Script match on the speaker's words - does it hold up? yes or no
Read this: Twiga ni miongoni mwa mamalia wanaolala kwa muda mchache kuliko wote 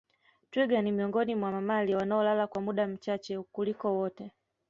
yes